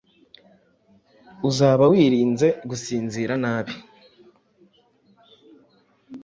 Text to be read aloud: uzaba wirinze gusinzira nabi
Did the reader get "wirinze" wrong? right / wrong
right